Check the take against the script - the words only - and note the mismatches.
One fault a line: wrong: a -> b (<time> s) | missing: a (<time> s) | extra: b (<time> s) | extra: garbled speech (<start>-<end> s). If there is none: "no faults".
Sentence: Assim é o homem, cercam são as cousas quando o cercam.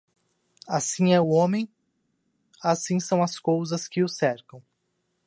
wrong: cercam -> assim (2.6 s)
wrong: quando -> que (3.9 s)